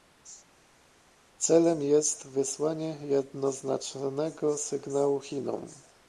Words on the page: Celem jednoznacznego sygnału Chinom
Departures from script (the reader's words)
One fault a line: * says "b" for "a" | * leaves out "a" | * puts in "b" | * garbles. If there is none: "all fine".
* puts in "jest wysłanie"